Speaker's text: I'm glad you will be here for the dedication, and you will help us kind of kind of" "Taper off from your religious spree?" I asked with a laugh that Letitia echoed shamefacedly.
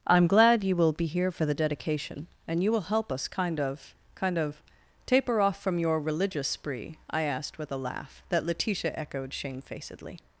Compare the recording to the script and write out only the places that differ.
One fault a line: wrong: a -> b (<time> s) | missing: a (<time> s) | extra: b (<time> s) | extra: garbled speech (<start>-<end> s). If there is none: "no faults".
no faults